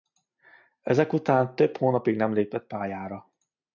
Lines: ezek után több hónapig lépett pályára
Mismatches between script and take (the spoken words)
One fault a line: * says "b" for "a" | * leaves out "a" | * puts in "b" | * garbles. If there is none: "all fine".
* puts in "nem"